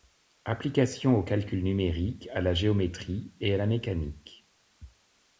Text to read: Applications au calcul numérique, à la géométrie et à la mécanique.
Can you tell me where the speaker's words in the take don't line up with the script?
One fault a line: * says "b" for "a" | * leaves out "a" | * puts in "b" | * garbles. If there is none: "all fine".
all fine